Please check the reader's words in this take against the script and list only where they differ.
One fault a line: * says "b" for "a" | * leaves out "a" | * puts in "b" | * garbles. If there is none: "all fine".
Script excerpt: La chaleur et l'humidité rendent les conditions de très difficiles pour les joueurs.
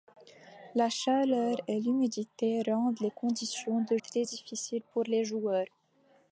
all fine